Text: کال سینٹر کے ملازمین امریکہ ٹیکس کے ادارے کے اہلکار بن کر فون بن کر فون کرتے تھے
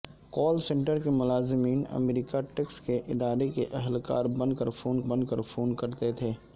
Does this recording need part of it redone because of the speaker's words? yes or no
no